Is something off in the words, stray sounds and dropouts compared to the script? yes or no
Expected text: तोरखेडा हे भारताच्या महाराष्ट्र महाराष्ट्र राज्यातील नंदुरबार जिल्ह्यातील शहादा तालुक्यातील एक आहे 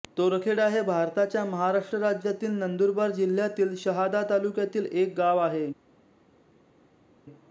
yes